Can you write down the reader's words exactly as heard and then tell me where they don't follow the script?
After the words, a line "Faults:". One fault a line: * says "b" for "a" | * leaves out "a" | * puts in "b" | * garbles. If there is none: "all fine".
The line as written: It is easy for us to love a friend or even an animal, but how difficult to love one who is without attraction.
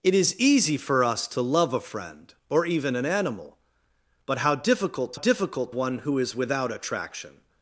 It is easy for us to love a friend or even an animal, but how difficult to difficult one who is without attraction.
Faults:
* says "difficult" for "love"